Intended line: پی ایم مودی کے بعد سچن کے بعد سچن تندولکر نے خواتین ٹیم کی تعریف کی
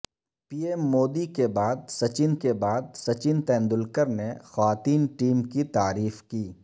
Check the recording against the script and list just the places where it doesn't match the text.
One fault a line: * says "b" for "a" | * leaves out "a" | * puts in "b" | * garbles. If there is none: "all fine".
all fine